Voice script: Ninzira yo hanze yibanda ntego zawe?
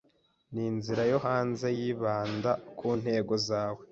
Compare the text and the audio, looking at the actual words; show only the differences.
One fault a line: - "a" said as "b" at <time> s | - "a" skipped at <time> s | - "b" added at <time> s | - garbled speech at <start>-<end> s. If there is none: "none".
- "ku" added at 2.8 s